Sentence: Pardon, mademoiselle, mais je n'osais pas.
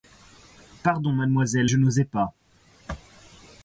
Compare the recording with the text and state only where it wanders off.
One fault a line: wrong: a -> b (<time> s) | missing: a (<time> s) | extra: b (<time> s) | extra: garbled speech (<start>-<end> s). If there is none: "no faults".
missing: mais (1.7 s)